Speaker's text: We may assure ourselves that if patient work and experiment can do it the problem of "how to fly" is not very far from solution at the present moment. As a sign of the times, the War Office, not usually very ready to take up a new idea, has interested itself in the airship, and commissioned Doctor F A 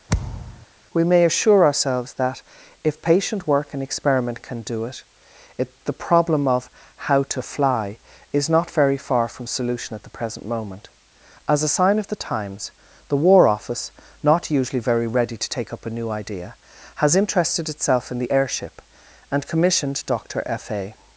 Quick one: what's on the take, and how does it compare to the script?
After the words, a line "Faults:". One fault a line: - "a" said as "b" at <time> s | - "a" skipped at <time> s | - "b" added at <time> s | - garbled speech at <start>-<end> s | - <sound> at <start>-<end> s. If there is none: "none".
We may assure ourselves that if patient work and experiment can do it it the problem of "how to fly" is not very far from solution at the present moment. As a sign of the times, the War Office, not usually very ready to take up a new idea, has interested itself in the airship, and commissioned Doctor F A
Faults:
- thud at 0.1-0.7 s
- "it" added at 5.6 s